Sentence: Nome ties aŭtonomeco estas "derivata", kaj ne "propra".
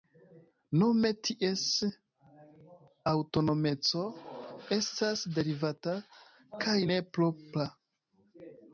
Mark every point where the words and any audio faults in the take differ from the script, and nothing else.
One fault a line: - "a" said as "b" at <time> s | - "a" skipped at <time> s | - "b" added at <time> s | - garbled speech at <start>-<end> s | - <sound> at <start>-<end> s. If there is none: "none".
none